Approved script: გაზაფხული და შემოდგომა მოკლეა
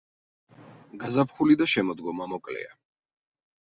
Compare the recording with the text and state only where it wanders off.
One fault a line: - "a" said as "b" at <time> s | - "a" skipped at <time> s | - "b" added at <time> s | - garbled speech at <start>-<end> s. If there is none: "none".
none